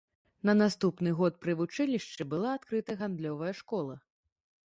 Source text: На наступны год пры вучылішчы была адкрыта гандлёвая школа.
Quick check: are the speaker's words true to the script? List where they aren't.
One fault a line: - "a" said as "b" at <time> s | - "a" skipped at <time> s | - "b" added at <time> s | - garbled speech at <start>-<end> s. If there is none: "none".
none